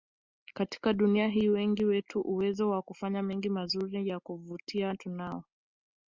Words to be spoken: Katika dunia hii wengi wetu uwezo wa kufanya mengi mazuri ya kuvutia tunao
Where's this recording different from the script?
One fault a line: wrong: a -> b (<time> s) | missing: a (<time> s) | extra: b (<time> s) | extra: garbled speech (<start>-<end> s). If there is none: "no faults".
no faults